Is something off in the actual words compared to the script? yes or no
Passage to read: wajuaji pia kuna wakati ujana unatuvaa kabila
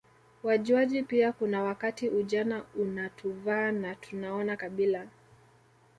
yes